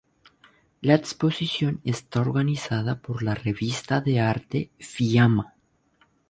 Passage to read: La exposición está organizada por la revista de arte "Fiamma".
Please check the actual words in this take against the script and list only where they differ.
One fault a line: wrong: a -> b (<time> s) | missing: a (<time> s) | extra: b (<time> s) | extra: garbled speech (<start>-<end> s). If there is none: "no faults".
no faults